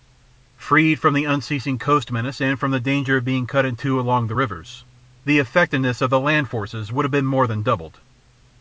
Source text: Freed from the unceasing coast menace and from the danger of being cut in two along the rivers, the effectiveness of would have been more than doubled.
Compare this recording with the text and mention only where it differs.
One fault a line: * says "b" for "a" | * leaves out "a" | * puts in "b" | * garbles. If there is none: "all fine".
* puts in "the land forces"